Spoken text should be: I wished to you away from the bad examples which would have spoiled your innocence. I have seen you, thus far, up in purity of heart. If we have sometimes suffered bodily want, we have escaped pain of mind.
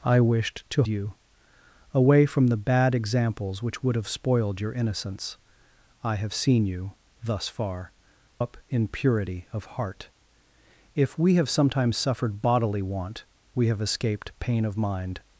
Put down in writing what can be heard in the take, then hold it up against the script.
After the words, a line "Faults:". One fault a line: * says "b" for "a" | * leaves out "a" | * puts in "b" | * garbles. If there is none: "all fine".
I wished to you away from the bad examples which would have spoiled your innocence. I have seen you, thus far, up in purity of heart. If we have sometimes suffered bodily want, we have escaped pain of mind.
Faults:
all fine